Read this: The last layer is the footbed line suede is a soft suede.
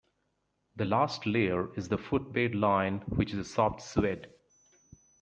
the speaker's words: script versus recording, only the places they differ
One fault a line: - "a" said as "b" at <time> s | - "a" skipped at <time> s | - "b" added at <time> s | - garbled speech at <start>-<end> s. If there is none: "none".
- "suede" said as "which" at 3.1 s